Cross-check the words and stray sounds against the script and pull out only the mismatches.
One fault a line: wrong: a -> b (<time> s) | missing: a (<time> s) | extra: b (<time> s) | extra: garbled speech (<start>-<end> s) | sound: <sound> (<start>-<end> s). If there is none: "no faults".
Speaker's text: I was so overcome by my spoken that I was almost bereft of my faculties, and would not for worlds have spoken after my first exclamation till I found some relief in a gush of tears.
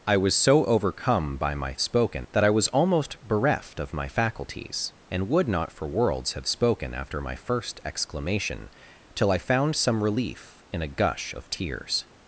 no faults